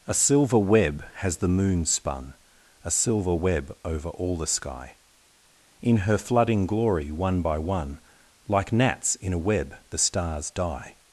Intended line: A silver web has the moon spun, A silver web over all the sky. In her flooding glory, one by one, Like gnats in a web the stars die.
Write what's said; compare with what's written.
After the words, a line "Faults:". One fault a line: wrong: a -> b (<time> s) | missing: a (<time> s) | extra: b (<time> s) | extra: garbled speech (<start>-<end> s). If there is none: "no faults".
A silver web has the moon spun, A silver web over all the sky. In her flooding glory, one by one, Like gnats in a web the stars die.
Faults:
no faults